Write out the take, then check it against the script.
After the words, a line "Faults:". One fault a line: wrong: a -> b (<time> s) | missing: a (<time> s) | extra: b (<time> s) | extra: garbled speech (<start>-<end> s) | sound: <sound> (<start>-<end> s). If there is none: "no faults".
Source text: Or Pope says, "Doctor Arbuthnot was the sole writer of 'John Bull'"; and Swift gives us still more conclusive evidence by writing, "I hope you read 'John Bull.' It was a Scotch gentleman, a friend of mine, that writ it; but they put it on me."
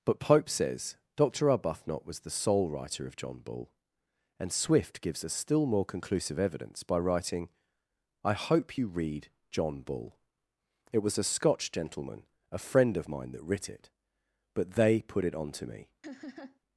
But Pope says, "Doctor Arbuthnot was the sole writer of 'John Bull'"; and Swift gives us still more conclusive evidence by writing, "I hope you read 'John Bull.' It was a Scotch gentleman, a friend of mine, that writ it; but they put it on to me."
Faults:
wrong: Or -> But (0.0 s)
extra: to (15.5 s)
sound: laugh (16.0-16.6 s)